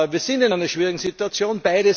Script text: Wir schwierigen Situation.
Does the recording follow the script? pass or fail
fail